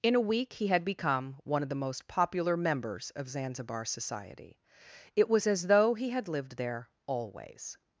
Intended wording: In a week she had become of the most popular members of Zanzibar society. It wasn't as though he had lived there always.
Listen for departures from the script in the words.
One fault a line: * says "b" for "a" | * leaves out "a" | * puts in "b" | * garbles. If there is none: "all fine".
* says "he" for "she"
* puts in "one"
* says "was" for "wasn't"